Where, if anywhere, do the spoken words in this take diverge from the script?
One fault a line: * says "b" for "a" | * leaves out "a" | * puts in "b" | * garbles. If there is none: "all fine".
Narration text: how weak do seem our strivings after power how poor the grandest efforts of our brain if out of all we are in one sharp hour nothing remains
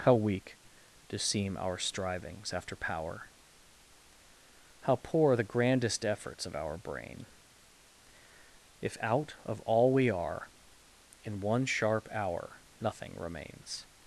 all fine